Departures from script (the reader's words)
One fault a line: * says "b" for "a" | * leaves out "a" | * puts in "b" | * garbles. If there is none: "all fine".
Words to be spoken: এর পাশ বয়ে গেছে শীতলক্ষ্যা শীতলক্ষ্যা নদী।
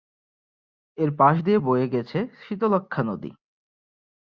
* puts in "দিয়ে"
* leaves out "শীতলক্ষ্যা"